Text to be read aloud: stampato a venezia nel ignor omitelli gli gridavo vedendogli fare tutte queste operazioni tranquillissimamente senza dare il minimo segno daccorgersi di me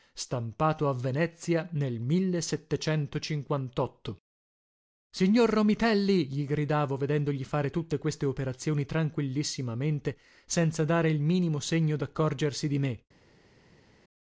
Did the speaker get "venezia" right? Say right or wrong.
right